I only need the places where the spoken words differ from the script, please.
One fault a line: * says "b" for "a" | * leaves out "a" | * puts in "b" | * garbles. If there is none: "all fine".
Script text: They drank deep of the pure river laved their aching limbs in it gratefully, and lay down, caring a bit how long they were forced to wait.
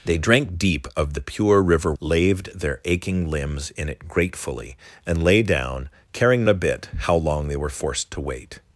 all fine